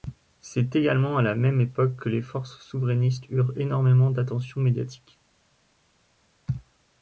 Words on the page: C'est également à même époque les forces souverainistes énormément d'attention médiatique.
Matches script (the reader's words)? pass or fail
fail